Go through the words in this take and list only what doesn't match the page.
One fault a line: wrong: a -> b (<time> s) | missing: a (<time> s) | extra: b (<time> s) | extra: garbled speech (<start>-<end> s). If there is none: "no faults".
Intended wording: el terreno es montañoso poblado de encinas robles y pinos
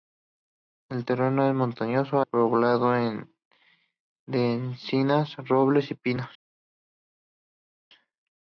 no faults